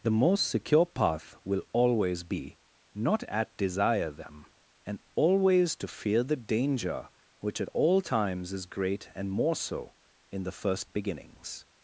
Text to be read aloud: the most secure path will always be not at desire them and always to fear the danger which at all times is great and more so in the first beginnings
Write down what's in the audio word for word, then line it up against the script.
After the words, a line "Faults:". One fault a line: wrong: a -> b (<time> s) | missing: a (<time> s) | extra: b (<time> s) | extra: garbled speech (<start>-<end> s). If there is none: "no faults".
the most secure path will always be not at desire them and always to fear the danger which at all times is great and more so in the first beginnings
Faults:
no faults